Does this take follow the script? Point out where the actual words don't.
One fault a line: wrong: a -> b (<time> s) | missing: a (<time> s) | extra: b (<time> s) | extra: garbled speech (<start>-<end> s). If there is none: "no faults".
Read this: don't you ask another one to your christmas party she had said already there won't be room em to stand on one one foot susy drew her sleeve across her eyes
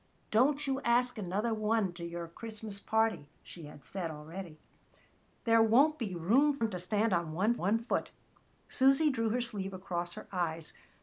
no faults